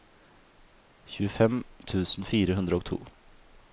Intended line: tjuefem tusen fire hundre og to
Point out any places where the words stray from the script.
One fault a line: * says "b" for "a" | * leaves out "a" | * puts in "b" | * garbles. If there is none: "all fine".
all fine